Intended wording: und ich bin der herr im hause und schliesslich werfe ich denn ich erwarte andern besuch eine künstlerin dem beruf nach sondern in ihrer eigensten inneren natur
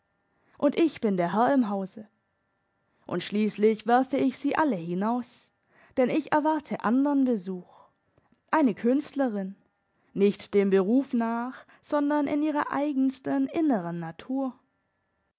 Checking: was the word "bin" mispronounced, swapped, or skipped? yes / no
no